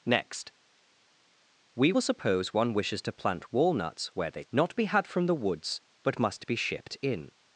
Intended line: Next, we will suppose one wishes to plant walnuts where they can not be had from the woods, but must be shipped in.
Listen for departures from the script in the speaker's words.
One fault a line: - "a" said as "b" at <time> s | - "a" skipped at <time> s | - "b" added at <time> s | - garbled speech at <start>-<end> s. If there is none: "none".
- "can" skipped at 4.4 s